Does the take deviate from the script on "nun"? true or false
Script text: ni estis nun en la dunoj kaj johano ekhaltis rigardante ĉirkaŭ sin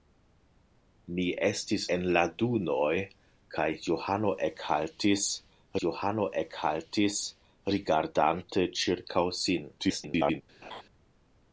true